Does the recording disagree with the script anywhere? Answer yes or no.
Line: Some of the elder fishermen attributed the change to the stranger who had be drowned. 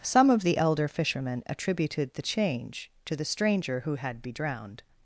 no